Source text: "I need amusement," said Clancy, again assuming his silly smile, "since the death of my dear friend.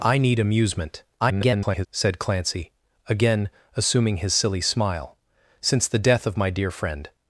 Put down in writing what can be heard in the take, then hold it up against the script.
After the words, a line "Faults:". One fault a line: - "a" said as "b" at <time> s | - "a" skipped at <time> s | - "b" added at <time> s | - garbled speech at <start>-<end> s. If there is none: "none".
"I need amusement," [garbled] said Clancy, again assuming his silly smile, "since the death of my dear friend.
Faults:
- garbled speech at 1.2-1.9 s